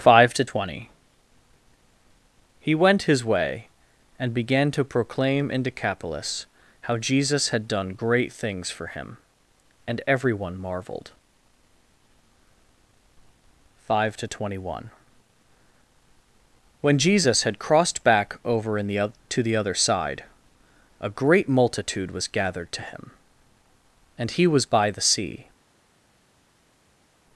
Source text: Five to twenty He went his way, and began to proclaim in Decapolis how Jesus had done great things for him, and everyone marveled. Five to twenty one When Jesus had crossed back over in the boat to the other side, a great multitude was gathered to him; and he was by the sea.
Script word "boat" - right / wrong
wrong